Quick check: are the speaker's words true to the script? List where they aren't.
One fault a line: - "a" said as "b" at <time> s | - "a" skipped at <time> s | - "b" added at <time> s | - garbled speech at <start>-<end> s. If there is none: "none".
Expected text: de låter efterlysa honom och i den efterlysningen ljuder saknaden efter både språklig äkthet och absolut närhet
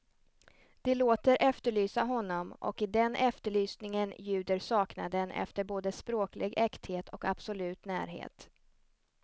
none